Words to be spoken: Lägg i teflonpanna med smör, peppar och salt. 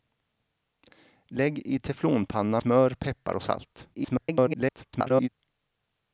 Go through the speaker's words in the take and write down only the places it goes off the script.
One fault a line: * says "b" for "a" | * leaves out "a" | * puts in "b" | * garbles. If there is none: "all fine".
* leaves out "med"
* garbles